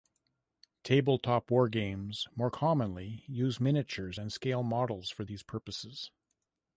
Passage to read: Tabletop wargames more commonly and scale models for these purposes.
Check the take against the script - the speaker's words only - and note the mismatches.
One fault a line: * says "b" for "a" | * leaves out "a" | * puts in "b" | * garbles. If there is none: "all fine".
* puts in "use miniatures"